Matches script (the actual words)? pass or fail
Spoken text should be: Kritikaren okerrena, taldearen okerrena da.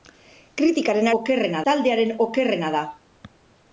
pass